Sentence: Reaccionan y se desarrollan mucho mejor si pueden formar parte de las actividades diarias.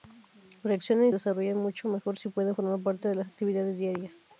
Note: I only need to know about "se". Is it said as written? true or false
false